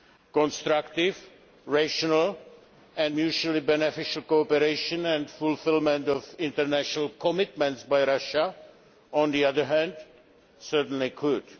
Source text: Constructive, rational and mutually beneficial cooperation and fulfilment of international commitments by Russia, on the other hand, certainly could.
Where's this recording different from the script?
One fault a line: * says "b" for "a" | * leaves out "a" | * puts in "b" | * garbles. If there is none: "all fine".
all fine